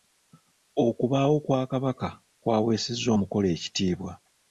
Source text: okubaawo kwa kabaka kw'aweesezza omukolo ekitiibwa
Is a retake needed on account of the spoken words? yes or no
no